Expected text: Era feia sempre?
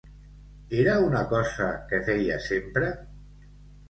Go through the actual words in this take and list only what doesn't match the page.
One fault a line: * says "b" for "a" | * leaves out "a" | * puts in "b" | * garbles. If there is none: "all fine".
* puts in "una cosa que"